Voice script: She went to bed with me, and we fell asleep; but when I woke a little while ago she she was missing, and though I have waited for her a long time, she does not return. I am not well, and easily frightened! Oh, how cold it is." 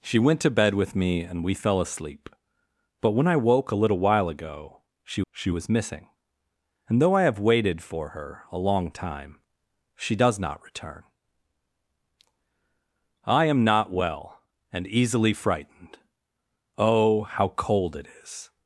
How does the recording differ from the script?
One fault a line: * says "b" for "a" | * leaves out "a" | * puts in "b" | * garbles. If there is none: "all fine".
all fine